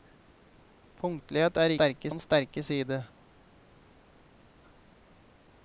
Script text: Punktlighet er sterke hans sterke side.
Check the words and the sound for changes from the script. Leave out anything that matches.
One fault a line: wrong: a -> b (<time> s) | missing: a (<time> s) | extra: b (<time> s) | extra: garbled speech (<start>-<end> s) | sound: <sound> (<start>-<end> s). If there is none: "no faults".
no faults